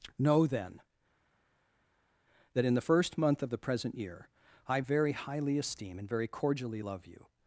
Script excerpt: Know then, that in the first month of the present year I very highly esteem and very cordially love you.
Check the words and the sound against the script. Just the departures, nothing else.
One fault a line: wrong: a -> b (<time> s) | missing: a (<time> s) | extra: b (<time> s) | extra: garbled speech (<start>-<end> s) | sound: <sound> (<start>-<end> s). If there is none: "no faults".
no faults